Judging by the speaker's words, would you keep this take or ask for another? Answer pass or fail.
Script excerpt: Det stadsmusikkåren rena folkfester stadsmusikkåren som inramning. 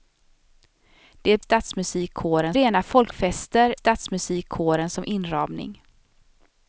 pass